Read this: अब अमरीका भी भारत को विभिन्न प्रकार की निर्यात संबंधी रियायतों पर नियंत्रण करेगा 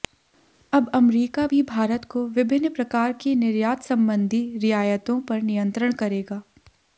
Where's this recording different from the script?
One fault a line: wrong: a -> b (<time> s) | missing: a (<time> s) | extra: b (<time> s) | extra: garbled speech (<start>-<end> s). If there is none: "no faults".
no faults